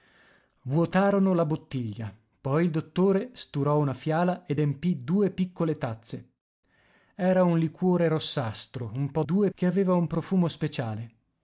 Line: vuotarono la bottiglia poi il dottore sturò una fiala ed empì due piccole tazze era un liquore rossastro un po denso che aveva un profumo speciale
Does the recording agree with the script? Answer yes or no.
no